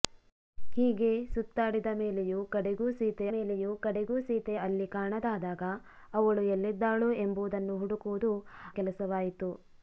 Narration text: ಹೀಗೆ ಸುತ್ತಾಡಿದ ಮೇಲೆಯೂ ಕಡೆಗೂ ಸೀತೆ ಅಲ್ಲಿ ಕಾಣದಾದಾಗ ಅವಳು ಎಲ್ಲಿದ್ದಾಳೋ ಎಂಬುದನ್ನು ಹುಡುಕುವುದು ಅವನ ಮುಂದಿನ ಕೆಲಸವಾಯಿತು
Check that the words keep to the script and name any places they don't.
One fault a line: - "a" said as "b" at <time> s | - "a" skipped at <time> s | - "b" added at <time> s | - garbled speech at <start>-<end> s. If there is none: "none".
- "ಮೇಲೆಯೂ ಕಡೆಗೂ ಸೀತೆ" added at 3.3 s
- "ಅವನ ಮುಂದಿನ" skipped at 8.3 s